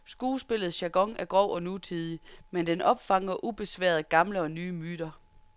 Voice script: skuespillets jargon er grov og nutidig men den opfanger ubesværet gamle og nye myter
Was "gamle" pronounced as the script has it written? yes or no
yes